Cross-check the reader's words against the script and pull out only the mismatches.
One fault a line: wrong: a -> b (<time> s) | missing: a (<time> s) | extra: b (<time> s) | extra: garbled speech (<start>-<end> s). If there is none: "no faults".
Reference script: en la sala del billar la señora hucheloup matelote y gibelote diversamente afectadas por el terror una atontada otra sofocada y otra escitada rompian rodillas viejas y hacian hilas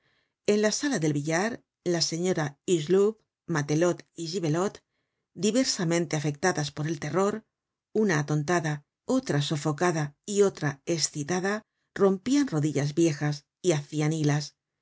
no faults